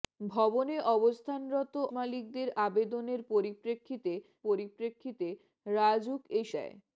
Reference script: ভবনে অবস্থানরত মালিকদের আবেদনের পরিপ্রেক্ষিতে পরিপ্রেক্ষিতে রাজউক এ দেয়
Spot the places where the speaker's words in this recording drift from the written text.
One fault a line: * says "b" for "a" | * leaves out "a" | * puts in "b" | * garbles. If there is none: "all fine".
all fine